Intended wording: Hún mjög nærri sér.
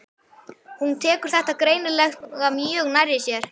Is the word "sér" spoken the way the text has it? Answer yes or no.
yes